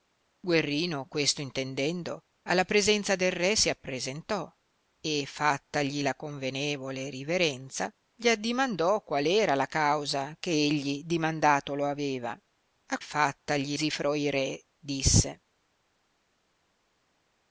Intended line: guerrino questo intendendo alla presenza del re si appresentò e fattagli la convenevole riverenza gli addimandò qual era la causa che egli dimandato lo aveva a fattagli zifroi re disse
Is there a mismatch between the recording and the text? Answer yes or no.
no